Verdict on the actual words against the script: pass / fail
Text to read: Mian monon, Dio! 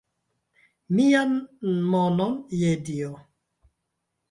fail